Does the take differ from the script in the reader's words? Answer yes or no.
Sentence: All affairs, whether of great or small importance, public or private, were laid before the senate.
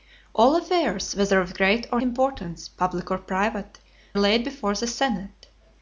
yes